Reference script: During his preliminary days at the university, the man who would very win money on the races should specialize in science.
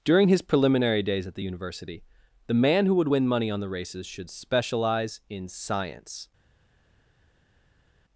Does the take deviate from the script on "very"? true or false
true